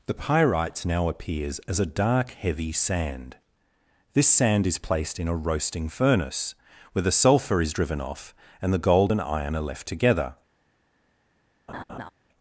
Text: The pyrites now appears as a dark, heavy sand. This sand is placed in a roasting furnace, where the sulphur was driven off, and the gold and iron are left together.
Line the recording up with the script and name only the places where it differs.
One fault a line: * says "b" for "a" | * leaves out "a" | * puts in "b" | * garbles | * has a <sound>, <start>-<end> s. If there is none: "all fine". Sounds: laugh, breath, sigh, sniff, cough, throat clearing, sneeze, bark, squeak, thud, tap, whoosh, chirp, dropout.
* says "is" for "was"
* has a laugh, 11.7-12.1 s